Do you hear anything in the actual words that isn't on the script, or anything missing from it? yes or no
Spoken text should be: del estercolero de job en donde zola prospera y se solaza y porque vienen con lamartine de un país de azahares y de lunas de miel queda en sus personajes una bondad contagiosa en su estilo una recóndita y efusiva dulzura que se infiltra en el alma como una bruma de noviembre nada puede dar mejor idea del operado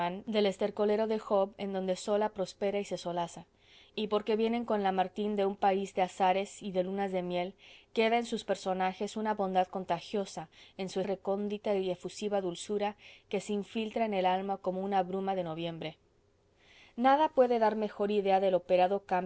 yes